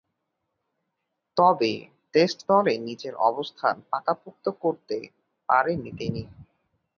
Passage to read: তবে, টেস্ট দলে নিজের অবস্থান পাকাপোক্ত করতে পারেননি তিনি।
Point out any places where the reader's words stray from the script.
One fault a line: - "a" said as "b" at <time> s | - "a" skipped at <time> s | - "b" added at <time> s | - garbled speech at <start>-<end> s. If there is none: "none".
none